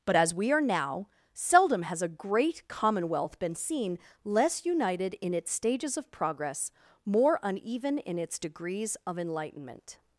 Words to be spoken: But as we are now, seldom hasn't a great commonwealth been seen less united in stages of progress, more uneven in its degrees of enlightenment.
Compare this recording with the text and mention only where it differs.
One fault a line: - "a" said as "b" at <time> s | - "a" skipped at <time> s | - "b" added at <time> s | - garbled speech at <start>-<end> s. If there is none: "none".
- "hasn't" said as "has" at 1.8 s
- "its" added at 5.3 s